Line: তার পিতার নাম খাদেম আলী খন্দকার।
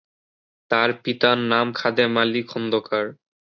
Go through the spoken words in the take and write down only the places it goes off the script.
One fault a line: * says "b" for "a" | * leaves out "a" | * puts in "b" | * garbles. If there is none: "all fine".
all fine